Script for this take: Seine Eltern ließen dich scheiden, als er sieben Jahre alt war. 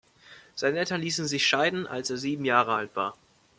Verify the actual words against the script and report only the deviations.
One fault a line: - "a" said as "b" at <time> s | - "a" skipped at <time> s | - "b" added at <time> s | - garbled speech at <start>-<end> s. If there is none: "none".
- "dich" said as "sich" at 1.3 s